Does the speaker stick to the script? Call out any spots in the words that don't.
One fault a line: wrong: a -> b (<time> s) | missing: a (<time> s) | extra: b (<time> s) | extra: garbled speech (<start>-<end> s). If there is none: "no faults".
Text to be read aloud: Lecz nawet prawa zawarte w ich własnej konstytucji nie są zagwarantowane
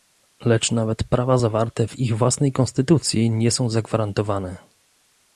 no faults